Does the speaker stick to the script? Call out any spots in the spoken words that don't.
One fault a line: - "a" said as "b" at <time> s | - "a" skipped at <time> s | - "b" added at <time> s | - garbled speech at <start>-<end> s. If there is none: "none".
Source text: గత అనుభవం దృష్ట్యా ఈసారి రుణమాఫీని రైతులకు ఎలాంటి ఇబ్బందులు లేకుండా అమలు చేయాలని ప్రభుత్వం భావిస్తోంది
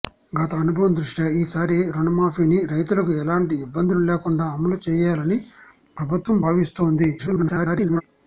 - garbled speech at 7.2-8.0 s